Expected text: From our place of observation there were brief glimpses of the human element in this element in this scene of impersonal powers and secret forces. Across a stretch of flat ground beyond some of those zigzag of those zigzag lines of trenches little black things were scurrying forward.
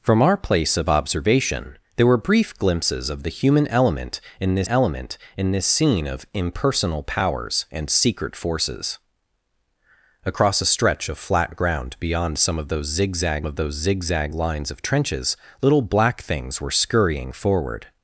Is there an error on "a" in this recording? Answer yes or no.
no